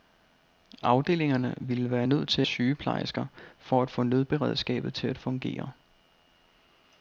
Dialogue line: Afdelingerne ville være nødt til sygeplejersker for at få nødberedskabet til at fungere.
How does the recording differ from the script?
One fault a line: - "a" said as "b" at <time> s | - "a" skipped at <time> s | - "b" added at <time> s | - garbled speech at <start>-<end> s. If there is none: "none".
none